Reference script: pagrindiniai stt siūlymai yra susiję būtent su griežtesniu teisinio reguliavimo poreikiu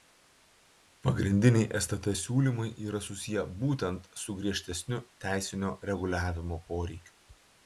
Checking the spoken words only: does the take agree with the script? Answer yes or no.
yes